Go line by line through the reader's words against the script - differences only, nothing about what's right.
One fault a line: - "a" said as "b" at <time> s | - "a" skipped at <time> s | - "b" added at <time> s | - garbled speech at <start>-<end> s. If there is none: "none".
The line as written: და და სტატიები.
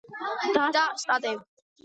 none